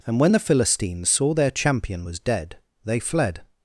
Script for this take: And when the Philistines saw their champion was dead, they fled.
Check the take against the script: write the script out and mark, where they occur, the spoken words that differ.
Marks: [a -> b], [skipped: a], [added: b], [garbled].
And when the Philistines saw their champion was dead, they fled.